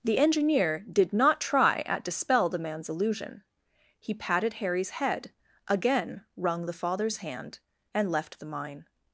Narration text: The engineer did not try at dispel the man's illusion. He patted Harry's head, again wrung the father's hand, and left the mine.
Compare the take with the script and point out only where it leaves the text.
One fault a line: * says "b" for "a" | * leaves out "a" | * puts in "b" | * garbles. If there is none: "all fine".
all fine